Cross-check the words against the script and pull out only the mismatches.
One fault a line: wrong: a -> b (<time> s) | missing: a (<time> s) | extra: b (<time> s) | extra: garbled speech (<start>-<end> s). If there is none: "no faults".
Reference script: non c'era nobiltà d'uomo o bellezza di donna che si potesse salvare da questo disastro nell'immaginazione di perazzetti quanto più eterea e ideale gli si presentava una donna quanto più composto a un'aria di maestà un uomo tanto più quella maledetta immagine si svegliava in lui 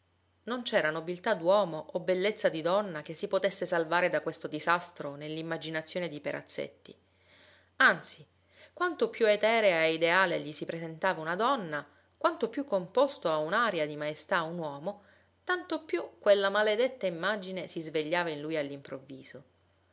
extra: anzi (7.8 s)